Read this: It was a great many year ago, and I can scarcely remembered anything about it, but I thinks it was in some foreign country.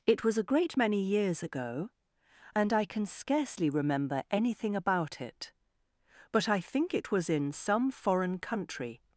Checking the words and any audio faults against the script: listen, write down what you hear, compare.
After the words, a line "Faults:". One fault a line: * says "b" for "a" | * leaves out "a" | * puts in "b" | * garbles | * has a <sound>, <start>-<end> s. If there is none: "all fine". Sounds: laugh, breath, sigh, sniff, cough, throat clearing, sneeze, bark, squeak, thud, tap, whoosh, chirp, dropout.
It was a great many years ago, and I can scarcely remember anything about it, but I think it was in some foreign country.
Faults:
* says "years" for "year"
* says "remember" for "remembered"
* says "think" for "thinks"